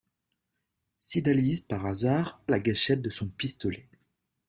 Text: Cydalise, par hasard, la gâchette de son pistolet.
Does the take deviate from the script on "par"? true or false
false